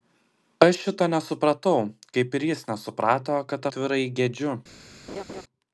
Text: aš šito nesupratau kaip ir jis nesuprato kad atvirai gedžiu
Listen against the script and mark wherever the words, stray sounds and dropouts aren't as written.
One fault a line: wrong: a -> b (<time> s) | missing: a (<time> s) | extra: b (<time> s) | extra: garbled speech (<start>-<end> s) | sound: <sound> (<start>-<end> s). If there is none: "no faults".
sound: laugh (5.1-5.4 s)